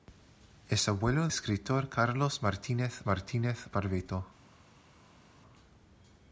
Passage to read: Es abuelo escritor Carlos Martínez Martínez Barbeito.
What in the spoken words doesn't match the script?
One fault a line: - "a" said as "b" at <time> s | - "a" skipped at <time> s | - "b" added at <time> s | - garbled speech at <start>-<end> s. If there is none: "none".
none